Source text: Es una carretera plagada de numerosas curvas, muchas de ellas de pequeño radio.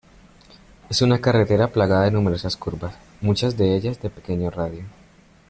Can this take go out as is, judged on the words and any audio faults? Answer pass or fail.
pass